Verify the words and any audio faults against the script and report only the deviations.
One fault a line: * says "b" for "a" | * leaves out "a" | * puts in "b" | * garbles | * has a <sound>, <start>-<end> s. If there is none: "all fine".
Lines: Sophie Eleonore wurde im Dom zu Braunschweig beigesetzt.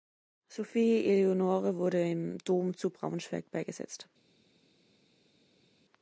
all fine